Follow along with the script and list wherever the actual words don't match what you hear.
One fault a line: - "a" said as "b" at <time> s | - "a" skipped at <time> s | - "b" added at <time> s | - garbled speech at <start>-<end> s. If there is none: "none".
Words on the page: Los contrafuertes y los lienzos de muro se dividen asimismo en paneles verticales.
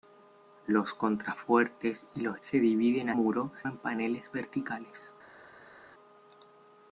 - "lienzos de muro" skipped at 2.4 s
- "asimismo" said as "muro" at 3.1 s